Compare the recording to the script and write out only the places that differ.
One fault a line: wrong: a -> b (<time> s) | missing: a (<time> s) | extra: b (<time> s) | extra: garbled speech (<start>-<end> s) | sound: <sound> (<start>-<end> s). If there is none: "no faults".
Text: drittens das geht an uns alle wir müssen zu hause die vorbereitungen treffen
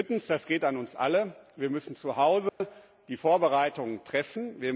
sound: dropout (2.5-2.6 s)